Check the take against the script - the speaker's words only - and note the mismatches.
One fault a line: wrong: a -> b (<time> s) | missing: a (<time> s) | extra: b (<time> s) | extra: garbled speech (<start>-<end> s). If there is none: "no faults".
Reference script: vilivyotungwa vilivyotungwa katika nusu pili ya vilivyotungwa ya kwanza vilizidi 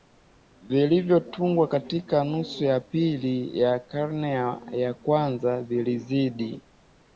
missing: vilivyotungwa (1.7 s)
extra: ya (2.6 s)
wrong: vilivyotungwa -> karne (3.8 s)